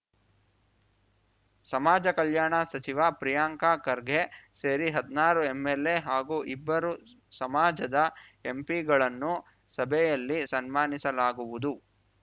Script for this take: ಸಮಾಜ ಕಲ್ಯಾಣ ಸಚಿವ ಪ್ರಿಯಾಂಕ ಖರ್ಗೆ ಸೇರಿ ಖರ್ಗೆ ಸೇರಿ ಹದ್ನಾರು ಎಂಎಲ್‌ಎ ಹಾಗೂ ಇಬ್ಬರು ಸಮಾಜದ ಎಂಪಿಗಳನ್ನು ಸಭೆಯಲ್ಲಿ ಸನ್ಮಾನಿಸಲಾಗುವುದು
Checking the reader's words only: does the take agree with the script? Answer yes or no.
no